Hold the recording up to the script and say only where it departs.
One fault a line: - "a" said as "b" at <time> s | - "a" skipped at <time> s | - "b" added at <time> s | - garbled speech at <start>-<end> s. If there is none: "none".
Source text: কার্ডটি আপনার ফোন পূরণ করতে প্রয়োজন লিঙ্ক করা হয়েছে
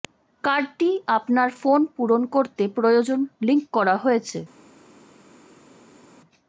none